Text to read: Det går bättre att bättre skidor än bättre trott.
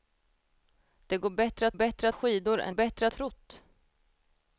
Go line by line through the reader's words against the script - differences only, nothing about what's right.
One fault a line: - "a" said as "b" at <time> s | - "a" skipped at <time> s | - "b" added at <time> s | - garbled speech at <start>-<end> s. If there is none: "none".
none